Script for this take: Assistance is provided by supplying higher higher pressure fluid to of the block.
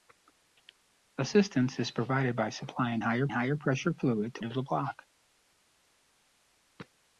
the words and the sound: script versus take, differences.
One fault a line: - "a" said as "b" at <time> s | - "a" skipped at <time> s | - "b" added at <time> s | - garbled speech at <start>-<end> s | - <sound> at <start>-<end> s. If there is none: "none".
none